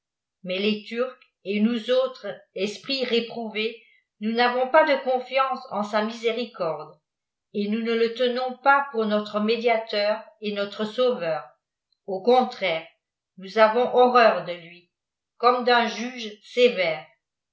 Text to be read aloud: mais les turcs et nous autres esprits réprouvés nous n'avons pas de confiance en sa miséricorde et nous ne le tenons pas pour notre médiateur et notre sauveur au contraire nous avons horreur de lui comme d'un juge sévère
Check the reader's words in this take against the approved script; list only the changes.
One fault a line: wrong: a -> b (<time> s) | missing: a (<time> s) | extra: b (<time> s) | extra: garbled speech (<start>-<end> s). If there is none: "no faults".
no faults